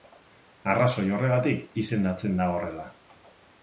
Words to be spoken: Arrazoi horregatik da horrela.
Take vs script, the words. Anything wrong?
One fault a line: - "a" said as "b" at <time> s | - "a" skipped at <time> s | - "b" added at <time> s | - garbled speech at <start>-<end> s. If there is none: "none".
- "izendatzen" added at 1.9 s